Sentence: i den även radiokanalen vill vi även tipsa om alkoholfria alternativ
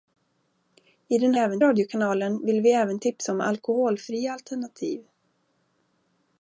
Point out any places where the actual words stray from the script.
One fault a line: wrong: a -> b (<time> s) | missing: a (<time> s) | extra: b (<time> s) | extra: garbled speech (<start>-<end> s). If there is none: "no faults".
no faults